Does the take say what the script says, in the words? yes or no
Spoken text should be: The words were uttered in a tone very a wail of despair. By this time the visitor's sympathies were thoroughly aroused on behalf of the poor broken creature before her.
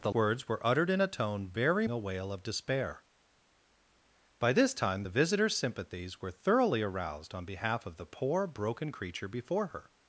yes